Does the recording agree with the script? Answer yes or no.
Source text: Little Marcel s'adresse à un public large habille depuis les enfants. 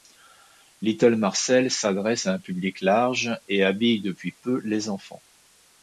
no